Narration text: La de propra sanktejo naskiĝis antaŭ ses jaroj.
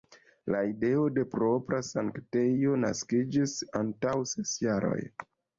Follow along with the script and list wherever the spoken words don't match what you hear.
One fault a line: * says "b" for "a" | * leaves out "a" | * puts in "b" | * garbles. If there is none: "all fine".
* puts in "ideo"